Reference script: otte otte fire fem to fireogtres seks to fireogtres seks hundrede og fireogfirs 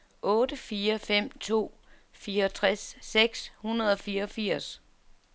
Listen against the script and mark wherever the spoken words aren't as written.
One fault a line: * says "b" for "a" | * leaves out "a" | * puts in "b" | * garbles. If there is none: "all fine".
* leaves out "otte"
* leaves out "to fireogtres seks"